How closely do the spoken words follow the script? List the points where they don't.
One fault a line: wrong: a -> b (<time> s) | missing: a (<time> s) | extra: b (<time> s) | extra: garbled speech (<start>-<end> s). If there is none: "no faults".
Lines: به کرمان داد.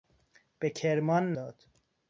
no faults